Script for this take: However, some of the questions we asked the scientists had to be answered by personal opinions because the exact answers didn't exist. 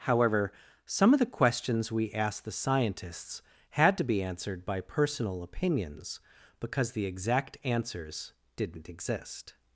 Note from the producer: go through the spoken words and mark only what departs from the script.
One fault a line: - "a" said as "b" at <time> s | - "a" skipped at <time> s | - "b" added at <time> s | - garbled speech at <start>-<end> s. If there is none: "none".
none